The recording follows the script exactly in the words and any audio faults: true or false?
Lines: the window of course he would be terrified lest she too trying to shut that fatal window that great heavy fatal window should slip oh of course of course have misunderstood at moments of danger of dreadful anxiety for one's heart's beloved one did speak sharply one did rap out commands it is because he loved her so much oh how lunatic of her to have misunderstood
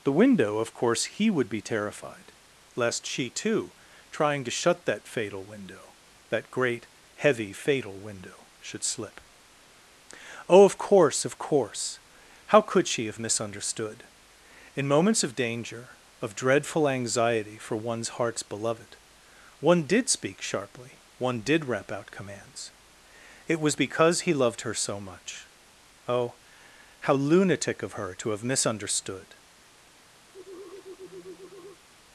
false